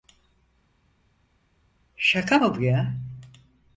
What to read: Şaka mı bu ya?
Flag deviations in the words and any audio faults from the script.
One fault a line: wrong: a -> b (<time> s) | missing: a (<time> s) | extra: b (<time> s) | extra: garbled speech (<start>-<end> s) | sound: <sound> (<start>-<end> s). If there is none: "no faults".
no faults